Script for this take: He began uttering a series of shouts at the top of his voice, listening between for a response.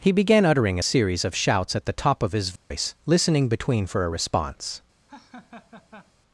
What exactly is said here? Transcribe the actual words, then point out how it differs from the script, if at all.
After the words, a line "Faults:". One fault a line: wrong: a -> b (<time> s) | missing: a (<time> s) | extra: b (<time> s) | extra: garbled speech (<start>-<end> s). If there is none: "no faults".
He began uttering a series of shouts at the top of his voice, listening between for a response.
Faults:
no faults